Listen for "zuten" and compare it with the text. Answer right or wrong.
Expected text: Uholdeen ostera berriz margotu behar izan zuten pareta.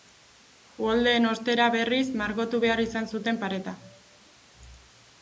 right